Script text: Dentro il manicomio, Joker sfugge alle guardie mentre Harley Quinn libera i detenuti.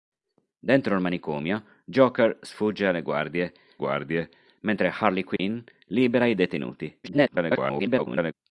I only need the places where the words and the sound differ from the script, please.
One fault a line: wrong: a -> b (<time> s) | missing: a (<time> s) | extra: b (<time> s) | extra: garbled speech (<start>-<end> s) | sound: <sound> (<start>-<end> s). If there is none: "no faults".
extra: guardie (3.8 s)
sound: dropout (5.4-5.4 s)
extra: garbled speech (7.0-8.3 s)